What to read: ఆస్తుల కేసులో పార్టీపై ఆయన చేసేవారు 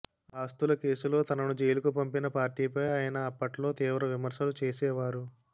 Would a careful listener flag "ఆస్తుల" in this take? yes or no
no